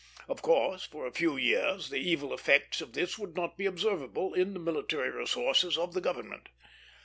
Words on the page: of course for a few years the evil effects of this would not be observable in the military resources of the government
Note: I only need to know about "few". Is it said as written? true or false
true